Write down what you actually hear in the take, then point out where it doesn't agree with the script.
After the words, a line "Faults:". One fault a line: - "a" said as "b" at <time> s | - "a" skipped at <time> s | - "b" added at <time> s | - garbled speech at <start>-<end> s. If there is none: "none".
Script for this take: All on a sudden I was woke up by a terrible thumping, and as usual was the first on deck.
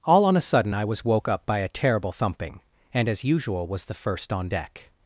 All on a sudden I was woke up by a terrible thumping, and as usual was the first on deck.
Faults:
none